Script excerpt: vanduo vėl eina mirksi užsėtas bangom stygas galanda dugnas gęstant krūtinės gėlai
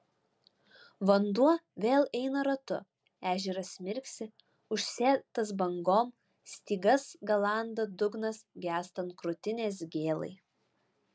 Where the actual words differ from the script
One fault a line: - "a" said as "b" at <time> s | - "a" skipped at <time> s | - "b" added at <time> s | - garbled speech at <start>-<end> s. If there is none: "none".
- "ratu ežeras" added at 2.5 s